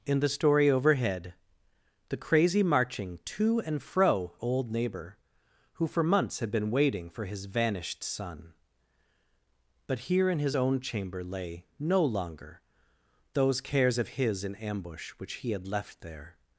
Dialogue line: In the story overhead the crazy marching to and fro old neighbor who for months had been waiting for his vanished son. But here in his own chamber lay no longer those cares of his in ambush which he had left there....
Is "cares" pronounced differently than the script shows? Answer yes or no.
no